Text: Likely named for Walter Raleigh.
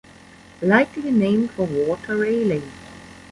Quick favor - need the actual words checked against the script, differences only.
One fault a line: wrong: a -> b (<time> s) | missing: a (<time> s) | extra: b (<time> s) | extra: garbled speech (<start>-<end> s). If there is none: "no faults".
no faults